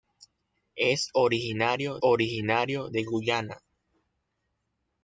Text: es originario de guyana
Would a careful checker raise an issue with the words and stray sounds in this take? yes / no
yes